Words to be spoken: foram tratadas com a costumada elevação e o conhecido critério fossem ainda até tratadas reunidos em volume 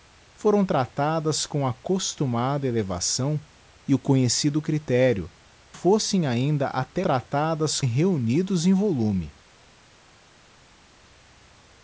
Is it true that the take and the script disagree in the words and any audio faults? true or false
false